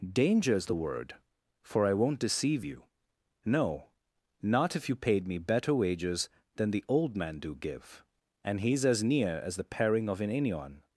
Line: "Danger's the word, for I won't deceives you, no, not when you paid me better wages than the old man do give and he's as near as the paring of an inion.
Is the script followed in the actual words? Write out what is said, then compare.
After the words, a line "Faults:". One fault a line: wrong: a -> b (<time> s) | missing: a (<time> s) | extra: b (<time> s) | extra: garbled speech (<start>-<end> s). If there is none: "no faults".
"Danger's the word, for I won't deceive you, no, not if you paid me better wages than the old man do give and he's as near as the paring of an inion.
Faults:
wrong: deceives -> deceive (2.2 s)
wrong: when -> if (4.8 s)